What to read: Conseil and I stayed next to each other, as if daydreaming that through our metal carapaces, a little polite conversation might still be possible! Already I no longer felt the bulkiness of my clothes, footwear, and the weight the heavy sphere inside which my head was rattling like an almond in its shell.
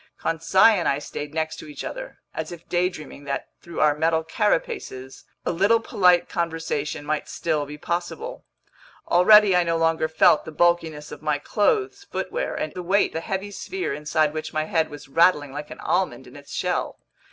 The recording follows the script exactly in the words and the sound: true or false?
true